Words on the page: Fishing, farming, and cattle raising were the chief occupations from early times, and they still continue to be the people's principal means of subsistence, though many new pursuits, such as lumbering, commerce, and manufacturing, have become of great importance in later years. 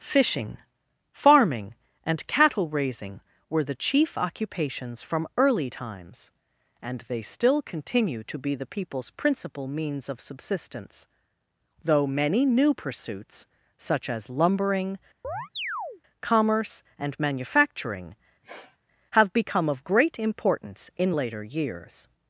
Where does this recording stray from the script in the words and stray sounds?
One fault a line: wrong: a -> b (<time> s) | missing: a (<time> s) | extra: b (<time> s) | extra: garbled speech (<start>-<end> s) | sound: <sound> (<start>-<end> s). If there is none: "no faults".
sound: chirp (15.2-16.0 s)
sound: sniff (18.4-18.8 s)